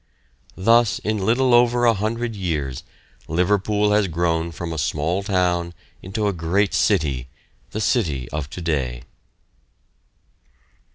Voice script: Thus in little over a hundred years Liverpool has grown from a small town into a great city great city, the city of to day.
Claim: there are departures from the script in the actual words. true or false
true